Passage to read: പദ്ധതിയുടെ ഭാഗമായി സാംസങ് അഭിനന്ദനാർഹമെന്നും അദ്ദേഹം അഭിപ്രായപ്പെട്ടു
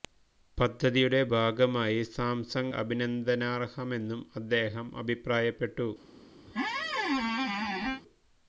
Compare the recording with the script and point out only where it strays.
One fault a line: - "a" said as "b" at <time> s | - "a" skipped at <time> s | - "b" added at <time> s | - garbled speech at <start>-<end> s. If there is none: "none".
none